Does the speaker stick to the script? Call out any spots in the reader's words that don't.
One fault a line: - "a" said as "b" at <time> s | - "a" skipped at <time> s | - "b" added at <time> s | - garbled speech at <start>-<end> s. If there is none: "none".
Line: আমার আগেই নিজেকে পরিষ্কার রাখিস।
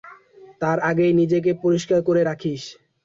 - "আমার" said as "তার" at 0.6 s
- "করে" added at 2.0 s